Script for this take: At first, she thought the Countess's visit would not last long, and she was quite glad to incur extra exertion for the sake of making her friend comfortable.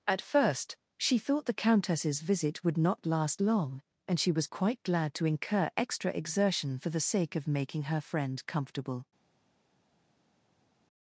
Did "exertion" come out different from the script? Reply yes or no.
no